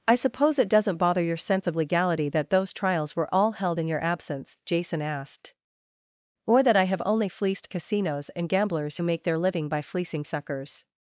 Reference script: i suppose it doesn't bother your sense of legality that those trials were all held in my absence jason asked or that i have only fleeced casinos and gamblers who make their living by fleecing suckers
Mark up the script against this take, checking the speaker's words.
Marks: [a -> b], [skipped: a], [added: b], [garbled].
i suppose it doesn't bother your sense of legality that those trials were all held in [my -> your] absence jason asked or that i have only fleeced casinos and gamblers who make their living by fleecing suckers